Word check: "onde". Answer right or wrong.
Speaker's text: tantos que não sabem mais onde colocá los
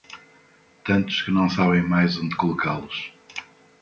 right